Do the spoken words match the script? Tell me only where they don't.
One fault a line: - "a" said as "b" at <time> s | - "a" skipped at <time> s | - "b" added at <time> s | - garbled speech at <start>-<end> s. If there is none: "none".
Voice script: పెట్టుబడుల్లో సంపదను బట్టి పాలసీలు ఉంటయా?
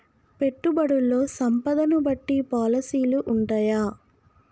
none